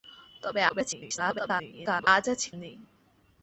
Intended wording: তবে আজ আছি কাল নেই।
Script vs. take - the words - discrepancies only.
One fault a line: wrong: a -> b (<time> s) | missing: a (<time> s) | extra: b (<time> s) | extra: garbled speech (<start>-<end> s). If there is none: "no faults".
extra: garbled speech (0.7-2.1 s)
missing: কাল (2.5 s)